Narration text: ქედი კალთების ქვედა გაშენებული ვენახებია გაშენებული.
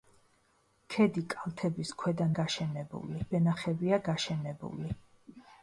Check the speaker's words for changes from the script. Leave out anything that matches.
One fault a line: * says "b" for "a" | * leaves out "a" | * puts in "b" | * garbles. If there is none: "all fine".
all fine